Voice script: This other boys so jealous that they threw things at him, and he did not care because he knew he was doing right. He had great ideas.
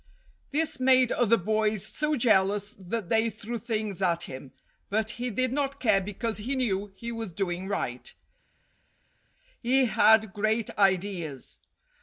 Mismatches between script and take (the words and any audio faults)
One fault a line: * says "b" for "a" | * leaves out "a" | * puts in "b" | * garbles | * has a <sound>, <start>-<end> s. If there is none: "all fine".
* puts in "made"
* says "but" for "and"